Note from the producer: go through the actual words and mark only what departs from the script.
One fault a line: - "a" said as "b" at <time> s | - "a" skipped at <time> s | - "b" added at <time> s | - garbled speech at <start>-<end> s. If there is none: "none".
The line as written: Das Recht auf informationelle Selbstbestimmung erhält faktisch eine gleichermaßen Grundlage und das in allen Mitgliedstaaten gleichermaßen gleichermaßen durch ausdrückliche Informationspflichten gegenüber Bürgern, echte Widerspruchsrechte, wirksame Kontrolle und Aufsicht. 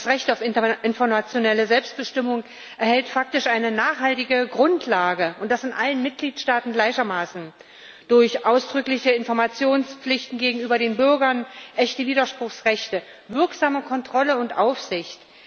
- "gleichermaßen" said as "nachhaltige" at 3.7 s
- "gleichermaßen" skipped at 7.5 s
- "den" added at 10.8 s